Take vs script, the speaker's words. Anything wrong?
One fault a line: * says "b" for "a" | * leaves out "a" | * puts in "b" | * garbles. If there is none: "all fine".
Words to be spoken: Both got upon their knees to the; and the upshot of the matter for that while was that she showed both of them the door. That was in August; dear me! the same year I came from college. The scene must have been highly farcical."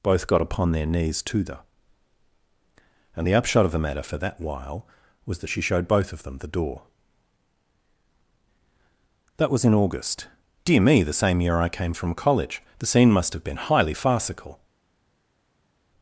all fine